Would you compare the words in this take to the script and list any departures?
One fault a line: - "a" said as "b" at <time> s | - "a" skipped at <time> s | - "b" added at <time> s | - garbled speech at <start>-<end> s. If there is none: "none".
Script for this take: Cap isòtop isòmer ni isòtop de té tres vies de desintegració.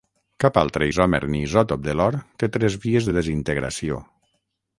- "isòtop" said as "altre" at 0.6 s
- "l'or" added at 2.0 s